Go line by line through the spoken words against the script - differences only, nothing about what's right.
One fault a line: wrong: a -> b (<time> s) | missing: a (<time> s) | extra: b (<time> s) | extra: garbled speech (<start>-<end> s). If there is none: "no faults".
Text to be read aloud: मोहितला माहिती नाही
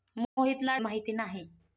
no faults